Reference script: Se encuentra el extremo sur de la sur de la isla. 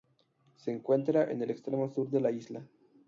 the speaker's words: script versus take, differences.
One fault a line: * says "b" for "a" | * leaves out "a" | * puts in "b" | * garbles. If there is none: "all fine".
* puts in "en"
* leaves out "sur de la"